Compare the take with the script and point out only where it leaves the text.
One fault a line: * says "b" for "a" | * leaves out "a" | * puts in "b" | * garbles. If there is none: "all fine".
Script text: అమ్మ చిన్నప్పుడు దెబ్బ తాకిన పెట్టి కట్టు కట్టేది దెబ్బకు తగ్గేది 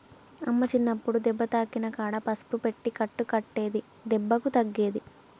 * puts in "కాడ పసుపు"